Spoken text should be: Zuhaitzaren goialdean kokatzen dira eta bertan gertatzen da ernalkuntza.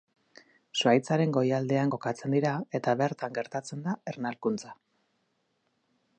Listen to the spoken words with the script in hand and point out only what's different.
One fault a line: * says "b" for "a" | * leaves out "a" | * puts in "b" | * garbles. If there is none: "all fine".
all fine